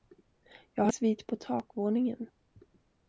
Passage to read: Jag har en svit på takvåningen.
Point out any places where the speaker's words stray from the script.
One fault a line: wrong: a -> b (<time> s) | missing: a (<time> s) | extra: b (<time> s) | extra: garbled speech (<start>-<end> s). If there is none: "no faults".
missing: en (0.9 s)